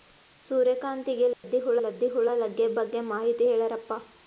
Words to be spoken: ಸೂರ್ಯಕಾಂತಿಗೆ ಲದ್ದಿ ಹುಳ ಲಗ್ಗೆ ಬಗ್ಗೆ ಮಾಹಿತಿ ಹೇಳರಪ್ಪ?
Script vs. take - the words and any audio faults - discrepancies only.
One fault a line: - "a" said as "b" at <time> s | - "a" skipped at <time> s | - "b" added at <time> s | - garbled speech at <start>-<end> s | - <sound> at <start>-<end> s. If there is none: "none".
- dropout at 1.3-1.4 s
- "ಲದ್ದಿ ಹುಳ" added at 1.8 s